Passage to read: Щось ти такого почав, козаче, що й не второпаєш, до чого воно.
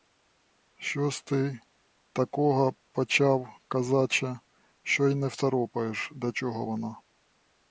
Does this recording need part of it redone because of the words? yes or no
no